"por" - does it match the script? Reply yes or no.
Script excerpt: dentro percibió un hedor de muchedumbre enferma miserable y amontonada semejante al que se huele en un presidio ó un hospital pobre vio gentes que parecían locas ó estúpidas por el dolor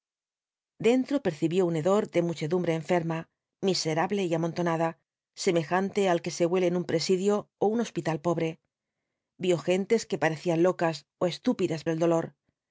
no